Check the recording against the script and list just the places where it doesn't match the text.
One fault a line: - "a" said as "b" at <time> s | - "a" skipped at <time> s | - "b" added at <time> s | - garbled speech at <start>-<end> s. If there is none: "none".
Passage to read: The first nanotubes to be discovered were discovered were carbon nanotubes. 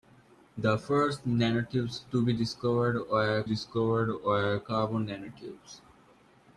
none